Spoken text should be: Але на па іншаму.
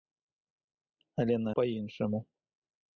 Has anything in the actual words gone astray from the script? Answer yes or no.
no